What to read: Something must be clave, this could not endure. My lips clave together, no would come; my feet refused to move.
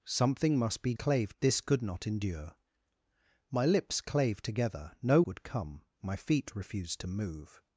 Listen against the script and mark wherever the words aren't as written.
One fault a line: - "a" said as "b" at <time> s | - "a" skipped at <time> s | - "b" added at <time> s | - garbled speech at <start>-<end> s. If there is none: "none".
none